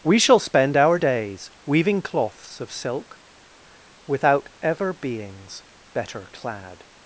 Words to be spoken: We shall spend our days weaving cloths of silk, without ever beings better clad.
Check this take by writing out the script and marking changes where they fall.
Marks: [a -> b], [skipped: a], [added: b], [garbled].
We shall spend our days weaving cloths of silk, without ever beings better clad.